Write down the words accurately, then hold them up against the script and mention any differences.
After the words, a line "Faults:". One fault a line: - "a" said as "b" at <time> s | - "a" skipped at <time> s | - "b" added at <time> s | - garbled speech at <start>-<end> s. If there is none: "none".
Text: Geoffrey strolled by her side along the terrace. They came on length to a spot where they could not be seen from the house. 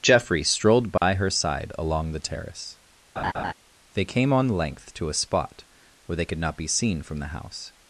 Geoffrey strolled by her side along the terrace. They came on length to a spot where they could not be seen from the house.
Faults:
none